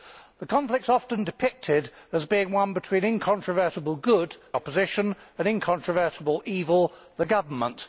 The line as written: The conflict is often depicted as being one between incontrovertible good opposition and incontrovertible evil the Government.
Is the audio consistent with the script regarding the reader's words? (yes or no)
yes